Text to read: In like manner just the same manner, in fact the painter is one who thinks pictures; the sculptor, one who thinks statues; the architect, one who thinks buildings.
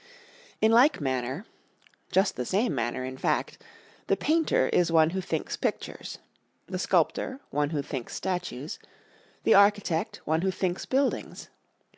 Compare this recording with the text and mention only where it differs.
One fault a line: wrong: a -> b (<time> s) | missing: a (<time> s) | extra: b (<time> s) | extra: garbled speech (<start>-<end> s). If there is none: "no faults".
no faults